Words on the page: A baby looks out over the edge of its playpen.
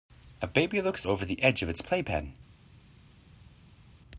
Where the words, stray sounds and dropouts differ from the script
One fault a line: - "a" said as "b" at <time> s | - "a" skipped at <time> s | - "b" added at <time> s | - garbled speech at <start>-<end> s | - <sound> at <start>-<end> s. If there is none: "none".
- "out" skipped at 1.1 s